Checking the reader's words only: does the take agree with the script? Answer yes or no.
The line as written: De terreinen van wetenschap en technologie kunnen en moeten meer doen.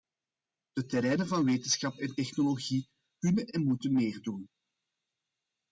yes